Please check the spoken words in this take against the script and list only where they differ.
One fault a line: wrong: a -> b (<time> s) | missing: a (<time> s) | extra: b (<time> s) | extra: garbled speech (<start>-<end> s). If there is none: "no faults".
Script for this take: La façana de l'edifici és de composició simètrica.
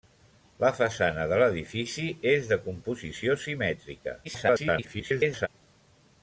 extra: garbled speech (4.2-5.5 s)